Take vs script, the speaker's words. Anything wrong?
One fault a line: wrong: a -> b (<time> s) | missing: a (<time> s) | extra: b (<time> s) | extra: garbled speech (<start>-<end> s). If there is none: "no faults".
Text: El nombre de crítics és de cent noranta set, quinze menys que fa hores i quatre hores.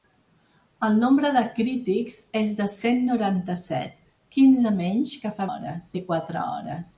no faults